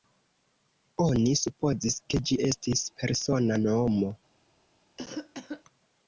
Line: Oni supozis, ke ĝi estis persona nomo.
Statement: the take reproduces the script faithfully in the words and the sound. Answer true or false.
false